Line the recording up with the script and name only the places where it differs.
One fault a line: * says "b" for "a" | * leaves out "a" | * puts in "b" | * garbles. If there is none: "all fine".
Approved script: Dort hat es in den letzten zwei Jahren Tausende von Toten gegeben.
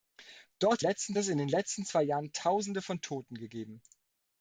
* says "letzten" for "hat"